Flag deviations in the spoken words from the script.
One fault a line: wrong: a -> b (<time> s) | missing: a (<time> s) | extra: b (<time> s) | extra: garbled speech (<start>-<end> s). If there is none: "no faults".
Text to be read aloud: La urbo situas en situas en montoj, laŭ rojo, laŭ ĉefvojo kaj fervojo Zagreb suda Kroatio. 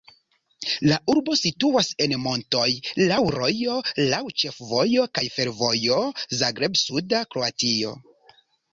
missing: situas en (2.1 s)